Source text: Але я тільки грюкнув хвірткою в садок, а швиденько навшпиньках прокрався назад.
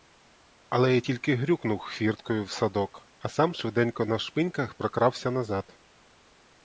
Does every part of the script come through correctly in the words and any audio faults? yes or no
no